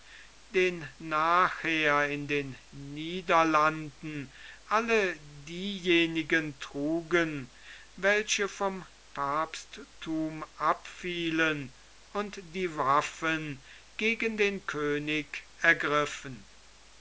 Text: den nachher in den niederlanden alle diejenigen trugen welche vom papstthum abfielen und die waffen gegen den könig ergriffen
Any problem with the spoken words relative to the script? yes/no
no